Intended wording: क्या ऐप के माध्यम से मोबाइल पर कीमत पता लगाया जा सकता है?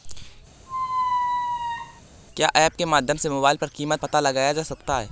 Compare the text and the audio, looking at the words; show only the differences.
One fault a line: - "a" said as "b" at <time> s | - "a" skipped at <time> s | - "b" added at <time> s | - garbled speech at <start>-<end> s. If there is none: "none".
none